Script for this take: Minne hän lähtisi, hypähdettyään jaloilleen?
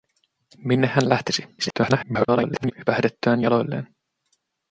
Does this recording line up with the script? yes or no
no